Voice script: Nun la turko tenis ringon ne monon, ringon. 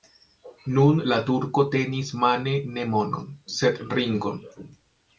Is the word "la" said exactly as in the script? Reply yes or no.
yes